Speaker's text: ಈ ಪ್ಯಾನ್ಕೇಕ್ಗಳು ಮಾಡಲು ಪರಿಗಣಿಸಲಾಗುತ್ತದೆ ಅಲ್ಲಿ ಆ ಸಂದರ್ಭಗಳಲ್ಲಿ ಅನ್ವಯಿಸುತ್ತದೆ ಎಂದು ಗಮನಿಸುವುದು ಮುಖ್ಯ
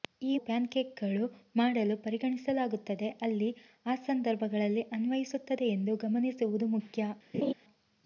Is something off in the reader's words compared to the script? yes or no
no